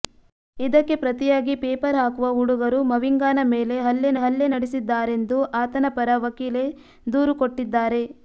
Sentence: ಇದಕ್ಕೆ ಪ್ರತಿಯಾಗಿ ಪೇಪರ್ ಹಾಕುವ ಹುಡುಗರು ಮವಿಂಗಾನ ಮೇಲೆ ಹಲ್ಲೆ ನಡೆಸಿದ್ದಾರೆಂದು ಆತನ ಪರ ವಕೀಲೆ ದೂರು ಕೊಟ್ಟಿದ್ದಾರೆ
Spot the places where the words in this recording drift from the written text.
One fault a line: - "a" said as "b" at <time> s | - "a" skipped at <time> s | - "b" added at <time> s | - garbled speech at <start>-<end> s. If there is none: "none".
- "ಹಲ್ಲೆ" added at 4.2 s